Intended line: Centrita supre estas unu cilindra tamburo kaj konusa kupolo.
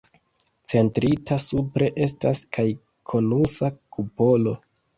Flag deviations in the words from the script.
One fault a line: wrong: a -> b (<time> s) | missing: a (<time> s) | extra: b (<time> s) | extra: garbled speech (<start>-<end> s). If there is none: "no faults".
missing: unu cilindra tamburo (2.4 s)